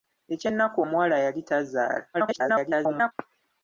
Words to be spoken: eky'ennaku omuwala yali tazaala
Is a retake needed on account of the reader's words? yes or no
yes